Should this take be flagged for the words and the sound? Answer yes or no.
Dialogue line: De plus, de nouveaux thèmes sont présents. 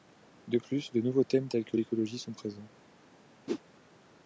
yes